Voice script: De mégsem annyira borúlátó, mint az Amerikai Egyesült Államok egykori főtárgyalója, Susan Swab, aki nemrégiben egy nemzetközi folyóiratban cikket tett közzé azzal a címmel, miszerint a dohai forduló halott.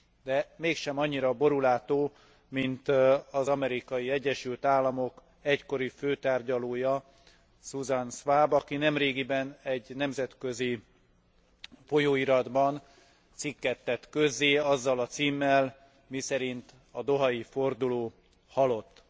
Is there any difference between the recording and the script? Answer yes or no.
no